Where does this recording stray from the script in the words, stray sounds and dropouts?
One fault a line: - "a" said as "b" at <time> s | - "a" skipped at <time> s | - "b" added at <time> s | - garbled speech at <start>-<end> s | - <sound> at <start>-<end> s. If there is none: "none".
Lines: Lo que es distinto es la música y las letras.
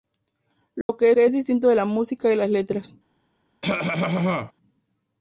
- dropout at 0.8-0.9 s
- "que" added at 1.1 s
- cough at 3.6-4.5 s